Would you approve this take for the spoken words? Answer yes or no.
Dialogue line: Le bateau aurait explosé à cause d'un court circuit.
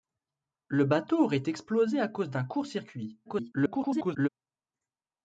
no